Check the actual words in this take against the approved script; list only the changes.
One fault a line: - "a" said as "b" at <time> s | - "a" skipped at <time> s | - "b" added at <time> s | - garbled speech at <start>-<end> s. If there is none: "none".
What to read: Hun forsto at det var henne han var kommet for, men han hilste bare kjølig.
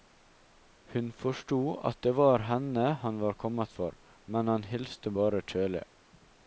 none